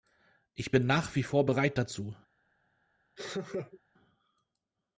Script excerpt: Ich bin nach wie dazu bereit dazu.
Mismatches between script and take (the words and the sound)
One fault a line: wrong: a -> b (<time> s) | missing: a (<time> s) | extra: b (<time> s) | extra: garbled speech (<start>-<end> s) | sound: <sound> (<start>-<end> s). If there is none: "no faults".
wrong: dazu -> vor (1.2 s)
sound: laugh (3.2-3.8 s)